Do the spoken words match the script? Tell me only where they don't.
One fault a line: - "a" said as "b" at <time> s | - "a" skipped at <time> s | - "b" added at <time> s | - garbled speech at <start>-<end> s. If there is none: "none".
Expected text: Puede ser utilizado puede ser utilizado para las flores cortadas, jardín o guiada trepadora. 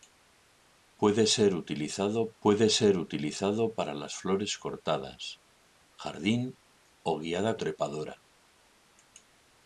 none